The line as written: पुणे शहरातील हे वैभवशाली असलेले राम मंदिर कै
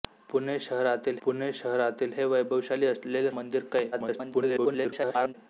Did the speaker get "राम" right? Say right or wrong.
wrong